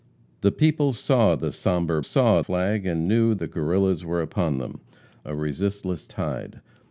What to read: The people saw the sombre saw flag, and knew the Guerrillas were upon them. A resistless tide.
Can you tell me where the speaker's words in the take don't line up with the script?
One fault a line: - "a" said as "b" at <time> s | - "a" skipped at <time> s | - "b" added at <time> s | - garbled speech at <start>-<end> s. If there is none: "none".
none